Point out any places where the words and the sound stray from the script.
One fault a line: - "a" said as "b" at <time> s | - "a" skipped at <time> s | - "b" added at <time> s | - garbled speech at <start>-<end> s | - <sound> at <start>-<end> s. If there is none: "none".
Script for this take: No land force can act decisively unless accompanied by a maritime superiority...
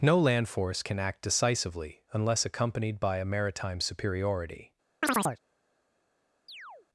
- chirp at 5.0-5.4 s
- chirp at 6.5-6.9 s